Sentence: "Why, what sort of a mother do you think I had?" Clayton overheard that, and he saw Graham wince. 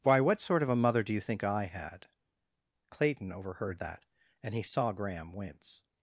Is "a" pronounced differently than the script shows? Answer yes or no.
no